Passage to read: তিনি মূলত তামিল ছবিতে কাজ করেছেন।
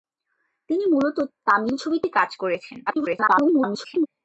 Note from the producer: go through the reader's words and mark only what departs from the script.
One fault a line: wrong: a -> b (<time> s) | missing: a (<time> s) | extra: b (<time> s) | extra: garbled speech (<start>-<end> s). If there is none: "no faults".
extra: garbled speech (2.9-4.1 s)